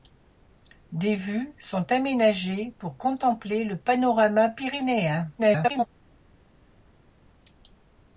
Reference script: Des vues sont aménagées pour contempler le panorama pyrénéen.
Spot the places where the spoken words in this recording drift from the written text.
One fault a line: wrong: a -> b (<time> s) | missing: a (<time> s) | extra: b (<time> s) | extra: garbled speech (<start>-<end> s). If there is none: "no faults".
extra: garbled speech (5.4-5.9 s)